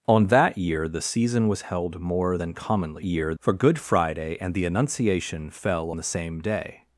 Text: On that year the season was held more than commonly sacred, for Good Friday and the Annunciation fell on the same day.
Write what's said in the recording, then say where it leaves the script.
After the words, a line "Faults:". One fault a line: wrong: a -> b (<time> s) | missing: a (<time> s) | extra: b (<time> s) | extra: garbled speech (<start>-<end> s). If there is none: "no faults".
On that year the season was held more than commonly year, for Good Friday and the Annunciation fell the same day.
Faults:
wrong: sacred -> year (3.0 s)
missing: on (5.9 s)